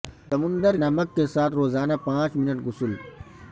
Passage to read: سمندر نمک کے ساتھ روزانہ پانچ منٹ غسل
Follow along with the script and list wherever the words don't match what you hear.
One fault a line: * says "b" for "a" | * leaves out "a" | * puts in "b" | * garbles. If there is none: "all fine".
all fine